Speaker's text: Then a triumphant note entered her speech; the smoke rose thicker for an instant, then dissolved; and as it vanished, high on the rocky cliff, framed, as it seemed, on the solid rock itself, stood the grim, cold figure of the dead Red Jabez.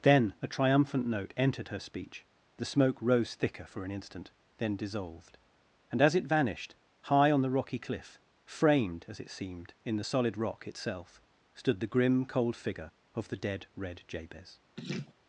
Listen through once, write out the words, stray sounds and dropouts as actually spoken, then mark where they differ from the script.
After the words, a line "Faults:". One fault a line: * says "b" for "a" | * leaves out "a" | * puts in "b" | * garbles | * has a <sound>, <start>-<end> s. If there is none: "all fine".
Then a triumphant note entered her speech; the smoke rose thicker for an instant, then dissolved; and as it vanished, high on the rocky cliff, framed, as it seemed, in the solid rock itself, stood the grim, cold figure of the dead Red Jabez.
Faults:
* says "in" for "on"
* has a laugh, 14.8-15.1 s